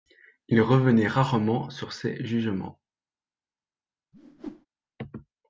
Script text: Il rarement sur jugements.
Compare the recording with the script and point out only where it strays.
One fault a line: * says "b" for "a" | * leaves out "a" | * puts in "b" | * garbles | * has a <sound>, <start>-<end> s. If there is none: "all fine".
* puts in "revenait"
* puts in "ses"
* has a whoosh, 4.1-4.7 s